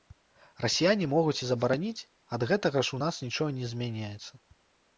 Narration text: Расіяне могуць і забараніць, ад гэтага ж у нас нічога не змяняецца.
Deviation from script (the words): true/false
false